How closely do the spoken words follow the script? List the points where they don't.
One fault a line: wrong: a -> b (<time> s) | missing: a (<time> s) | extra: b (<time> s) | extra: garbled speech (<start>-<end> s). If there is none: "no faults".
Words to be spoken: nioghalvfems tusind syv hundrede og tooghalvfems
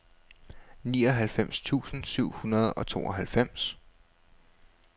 no faults